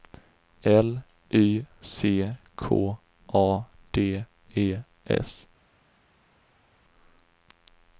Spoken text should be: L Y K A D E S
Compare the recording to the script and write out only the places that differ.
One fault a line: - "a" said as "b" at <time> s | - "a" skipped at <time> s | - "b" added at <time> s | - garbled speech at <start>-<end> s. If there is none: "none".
- "C" added at 1.8 s